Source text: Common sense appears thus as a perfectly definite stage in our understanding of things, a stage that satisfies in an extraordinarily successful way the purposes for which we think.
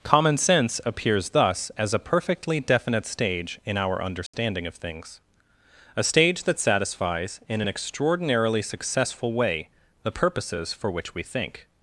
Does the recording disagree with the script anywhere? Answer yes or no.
no